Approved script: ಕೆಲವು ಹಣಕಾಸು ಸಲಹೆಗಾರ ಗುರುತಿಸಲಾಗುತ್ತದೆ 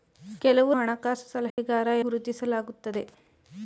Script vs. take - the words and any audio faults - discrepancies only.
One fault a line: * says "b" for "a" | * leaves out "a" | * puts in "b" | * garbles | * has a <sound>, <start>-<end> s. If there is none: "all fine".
* has a dropout, 1.5-1.6 s